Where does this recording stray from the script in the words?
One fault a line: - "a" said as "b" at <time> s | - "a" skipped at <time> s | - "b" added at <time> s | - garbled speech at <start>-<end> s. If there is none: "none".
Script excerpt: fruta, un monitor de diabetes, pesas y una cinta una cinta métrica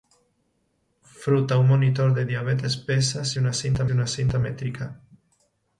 none